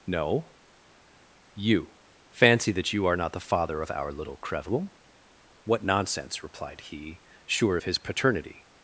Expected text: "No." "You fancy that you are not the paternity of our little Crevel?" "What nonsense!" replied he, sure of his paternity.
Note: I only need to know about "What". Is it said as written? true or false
true